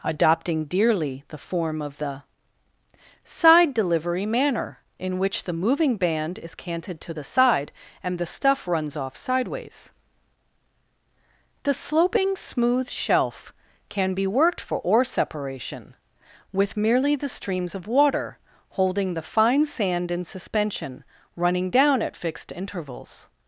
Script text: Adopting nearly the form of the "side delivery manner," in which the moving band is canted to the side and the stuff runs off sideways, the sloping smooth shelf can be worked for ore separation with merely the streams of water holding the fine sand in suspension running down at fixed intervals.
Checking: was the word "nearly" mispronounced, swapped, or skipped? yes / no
yes